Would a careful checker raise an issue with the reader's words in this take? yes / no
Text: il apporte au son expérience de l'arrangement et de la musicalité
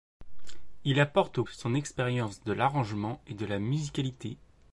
no